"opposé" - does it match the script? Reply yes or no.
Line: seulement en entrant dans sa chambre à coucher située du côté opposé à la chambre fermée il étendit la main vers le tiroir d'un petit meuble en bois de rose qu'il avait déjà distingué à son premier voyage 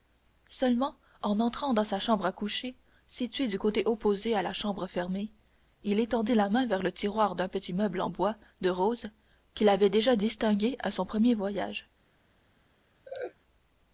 yes